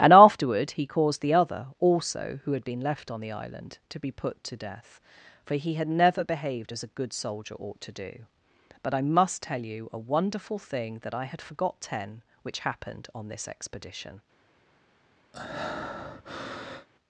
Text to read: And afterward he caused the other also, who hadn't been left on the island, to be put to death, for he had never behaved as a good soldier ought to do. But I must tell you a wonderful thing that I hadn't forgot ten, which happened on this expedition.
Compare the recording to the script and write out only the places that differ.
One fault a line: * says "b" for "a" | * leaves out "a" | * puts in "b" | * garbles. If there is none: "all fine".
* says "had" for "hadn't"
* says "had" for "hadn't"